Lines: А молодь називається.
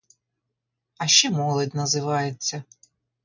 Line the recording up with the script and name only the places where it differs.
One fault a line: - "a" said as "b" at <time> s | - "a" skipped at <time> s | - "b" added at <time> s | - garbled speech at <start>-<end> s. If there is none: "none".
- "ще" added at 1.1 s